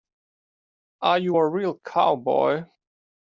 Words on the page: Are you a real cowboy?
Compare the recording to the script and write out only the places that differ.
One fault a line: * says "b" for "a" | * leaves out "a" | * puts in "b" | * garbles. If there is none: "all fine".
all fine